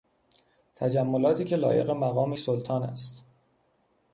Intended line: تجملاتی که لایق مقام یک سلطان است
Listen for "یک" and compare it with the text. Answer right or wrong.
wrong